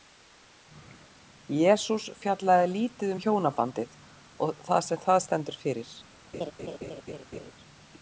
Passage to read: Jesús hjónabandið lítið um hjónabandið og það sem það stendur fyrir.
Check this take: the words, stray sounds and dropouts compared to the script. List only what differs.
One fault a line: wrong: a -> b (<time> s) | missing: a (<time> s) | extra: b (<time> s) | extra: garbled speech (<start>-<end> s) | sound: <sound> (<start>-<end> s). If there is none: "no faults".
wrong: hjónabandið -> fjallaði (2.2 s)
sound: laugh (6.3-7.5 s)